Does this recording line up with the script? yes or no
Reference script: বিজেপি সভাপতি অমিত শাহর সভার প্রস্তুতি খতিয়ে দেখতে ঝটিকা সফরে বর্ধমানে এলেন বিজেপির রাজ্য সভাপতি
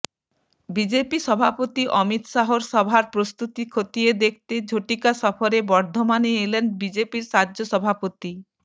yes